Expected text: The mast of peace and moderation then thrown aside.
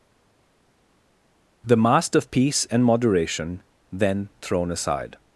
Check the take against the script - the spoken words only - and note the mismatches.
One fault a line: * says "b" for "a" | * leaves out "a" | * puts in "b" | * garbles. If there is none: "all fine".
all fine